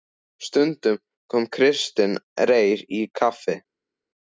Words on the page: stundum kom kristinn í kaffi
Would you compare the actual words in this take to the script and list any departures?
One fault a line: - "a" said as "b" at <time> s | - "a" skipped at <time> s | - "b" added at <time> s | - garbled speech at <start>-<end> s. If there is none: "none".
- "reyr" added at 2.5 s